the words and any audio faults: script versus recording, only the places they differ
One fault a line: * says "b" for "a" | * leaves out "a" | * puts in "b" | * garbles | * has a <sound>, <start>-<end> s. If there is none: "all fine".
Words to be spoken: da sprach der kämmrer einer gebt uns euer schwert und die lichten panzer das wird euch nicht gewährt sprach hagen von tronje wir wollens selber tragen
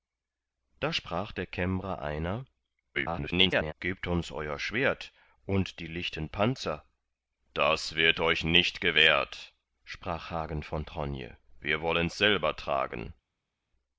* garbles